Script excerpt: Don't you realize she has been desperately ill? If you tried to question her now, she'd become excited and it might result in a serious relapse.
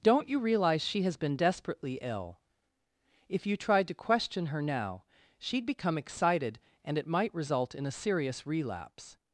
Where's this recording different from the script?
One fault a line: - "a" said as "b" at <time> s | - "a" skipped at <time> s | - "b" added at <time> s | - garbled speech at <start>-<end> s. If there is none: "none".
none